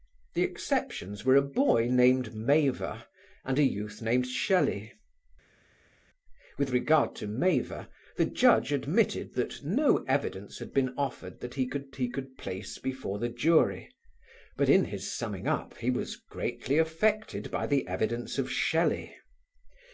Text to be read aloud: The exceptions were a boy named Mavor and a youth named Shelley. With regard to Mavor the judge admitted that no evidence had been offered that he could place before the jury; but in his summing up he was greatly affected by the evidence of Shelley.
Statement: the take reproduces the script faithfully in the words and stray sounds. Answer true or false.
false